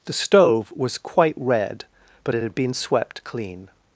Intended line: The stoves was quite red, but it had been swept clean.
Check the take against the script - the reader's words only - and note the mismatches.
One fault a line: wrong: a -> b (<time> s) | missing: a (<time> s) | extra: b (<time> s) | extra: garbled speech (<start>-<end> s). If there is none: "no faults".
wrong: stoves -> stove (0.1 s)